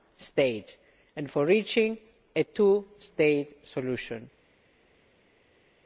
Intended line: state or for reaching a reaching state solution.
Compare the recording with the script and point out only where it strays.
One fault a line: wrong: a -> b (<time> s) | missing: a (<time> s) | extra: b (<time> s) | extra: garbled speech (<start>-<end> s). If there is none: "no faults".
wrong: or -> and (1.1 s)
wrong: reaching -> two (2.4 s)